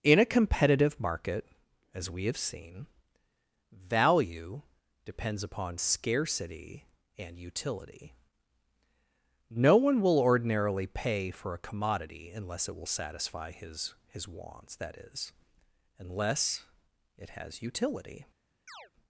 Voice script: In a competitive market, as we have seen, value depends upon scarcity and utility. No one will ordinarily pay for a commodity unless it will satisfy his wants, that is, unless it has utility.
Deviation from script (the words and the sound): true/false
true